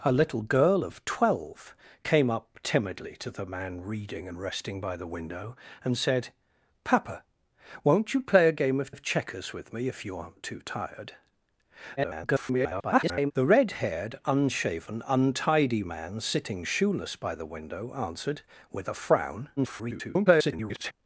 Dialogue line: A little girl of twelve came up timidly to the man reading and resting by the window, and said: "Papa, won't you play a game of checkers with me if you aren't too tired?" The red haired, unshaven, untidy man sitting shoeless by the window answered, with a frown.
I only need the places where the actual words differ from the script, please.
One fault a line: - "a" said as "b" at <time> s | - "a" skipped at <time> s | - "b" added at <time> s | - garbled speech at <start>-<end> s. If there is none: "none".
- "of" added at 8.9 s
- garbled speech at 12.0-13.3 s
- garbled speech at 19.6-20.9 s